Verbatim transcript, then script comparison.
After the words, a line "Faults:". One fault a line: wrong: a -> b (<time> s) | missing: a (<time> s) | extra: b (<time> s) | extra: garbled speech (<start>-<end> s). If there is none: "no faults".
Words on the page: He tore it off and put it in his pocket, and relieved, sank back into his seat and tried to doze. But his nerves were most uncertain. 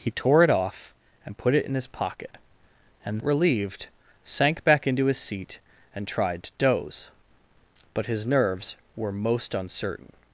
He tore it off and put it in his pocket, and relieved, sank back into his seat and tried to doze. But his nerves were most uncertain.
Faults:
no faults